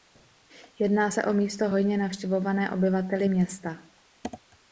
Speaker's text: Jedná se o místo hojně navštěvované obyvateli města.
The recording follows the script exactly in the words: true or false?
true